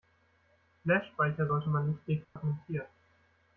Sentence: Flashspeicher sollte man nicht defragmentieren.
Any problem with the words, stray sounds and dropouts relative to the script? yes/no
yes